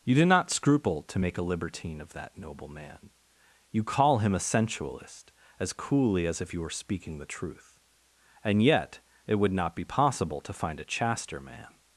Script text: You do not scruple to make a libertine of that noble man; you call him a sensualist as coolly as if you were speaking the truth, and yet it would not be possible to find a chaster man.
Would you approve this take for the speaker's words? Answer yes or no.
yes